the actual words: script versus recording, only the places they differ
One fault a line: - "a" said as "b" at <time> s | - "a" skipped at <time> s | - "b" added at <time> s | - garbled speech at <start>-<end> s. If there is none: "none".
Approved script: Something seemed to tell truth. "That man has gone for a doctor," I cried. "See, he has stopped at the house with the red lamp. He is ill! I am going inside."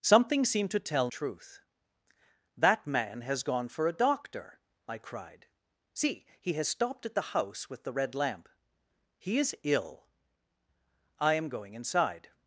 none